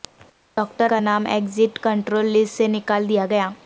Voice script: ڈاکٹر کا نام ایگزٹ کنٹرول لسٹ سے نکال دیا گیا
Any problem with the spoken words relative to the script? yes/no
no